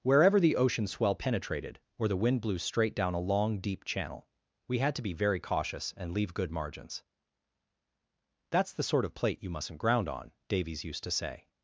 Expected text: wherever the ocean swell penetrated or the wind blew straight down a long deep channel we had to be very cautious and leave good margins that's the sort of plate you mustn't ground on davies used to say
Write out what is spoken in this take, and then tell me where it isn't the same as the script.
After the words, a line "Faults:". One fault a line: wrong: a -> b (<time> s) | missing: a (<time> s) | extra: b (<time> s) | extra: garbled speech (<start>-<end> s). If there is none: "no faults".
wherever the ocean swell penetrated or the wind blew straight down a long deep channel we had to be very cautious and leave good margins that's the sort of plate you mustn't ground on davies used to say
Faults:
no faults